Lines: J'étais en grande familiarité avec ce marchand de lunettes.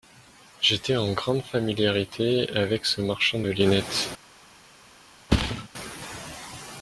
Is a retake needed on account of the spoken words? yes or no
no